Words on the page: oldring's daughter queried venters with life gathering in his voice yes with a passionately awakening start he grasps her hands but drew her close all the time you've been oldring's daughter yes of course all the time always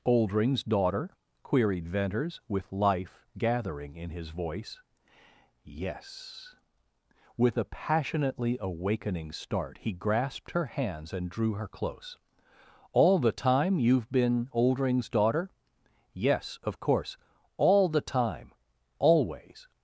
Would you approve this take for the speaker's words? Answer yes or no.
no